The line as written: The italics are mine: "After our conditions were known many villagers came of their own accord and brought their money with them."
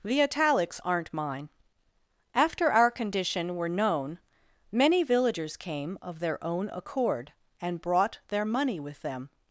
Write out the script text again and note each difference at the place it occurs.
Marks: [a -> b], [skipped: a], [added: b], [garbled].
The italics [are -> aren't] mine: "After our [conditions -> condition] were known many villagers came of their own accord and brought their money with them."